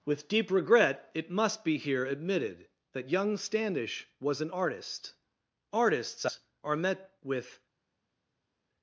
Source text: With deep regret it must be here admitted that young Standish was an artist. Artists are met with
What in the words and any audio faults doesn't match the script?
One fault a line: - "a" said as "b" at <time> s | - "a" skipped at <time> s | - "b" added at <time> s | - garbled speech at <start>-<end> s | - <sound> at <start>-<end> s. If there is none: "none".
none